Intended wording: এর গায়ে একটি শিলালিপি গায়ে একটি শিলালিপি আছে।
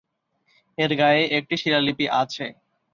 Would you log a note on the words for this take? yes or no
yes